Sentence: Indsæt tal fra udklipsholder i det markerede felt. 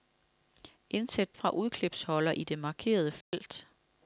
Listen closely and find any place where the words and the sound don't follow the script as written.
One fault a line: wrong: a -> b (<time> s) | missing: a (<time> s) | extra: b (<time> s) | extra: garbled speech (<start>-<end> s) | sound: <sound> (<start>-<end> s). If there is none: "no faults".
missing: tal (1.3 s)
sound: dropout (3.2-3.3 s)